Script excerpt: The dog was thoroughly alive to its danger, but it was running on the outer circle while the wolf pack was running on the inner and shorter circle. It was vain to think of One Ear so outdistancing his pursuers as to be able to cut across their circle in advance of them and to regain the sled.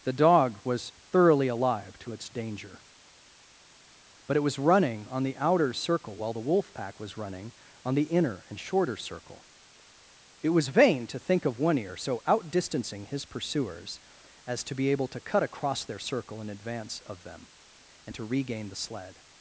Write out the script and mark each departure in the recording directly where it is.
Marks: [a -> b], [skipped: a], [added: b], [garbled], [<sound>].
The dog was thoroughly alive to its danger, but it was running on the outer circle while the wolf pack was running on the inner and shorter circle. It was vain to think of One Ear so outdistancing his pursuers as to be able to cut across their circle in advance of them and to regain the sled.